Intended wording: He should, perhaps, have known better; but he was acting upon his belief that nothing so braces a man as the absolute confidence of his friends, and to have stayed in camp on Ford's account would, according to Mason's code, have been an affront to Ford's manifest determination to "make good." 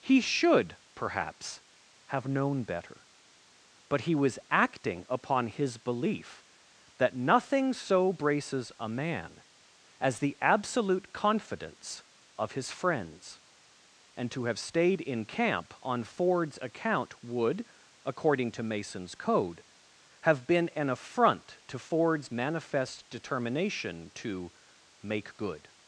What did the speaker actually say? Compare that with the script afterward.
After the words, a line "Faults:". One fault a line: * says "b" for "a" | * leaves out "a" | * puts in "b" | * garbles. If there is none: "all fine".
He should, perhaps, have known better; but he was acting upon his belief that nothing so braces a man as the absolute confidence of his friends, and to have stayed in camp on Ford's account would, according to Mason's code, have been an affront to Ford's manifest determination to "make good."
Faults:
all fine